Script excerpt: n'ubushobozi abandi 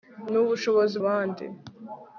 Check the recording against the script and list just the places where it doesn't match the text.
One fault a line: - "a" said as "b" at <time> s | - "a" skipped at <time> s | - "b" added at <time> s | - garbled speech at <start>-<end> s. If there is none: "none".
none